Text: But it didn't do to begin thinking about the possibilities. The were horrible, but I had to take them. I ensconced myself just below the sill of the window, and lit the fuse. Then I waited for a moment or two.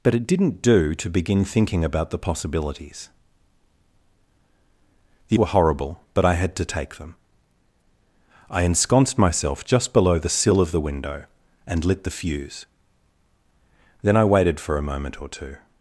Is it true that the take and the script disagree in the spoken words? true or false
false